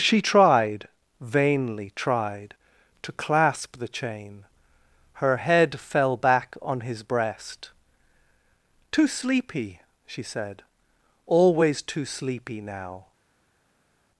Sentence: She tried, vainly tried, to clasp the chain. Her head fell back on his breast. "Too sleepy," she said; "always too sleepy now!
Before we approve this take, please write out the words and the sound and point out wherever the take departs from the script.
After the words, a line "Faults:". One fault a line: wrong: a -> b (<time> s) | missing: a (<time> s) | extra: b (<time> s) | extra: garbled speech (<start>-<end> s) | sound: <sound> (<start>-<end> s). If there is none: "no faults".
She tried, vainly tried, to clasp the chain. Her head fell back on his breast. "Too sleepy," she said; "always too sleepy now!
Faults:
no faults